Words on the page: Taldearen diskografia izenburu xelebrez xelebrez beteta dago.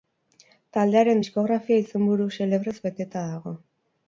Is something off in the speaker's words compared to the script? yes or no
yes